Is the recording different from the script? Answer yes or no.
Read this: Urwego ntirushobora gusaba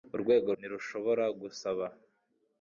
no